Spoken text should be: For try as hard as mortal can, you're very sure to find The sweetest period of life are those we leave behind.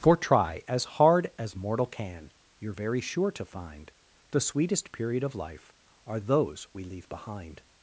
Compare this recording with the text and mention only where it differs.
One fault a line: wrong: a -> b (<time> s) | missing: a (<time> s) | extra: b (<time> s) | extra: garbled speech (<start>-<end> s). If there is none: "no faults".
no faults